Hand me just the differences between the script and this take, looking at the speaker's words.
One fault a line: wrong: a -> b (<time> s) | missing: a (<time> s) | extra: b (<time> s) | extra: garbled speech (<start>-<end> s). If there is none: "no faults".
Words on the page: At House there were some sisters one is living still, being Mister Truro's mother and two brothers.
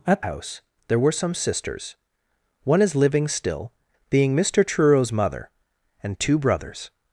no faults